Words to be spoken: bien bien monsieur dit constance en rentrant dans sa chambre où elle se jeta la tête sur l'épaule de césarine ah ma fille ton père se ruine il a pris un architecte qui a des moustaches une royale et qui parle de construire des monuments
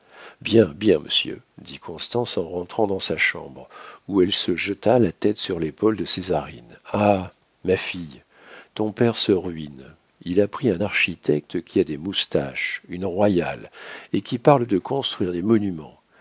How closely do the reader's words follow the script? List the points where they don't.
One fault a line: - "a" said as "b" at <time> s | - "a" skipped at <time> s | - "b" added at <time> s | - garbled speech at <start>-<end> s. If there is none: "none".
none